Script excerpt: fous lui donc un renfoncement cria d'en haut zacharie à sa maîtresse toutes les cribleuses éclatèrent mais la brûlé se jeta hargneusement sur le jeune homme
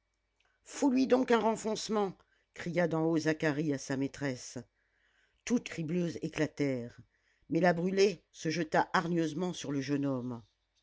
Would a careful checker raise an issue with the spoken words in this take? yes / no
yes